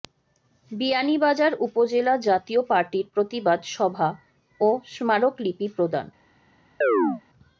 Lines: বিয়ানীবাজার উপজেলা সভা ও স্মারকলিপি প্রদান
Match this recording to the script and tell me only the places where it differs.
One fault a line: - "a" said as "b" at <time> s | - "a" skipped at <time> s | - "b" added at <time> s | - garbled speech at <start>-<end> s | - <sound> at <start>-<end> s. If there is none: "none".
- "জাতীয় পার্টির প্রতিবাদ" added at 2.3 s
- chirp at 6.8-7.2 s